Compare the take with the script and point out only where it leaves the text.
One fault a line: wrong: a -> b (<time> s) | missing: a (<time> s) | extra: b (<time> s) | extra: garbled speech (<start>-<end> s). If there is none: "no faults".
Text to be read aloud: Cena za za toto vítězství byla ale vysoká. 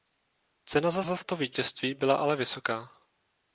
no faults